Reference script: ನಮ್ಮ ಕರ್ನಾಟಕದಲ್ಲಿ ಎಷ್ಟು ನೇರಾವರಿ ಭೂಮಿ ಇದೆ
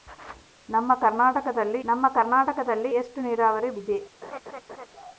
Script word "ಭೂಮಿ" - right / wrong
wrong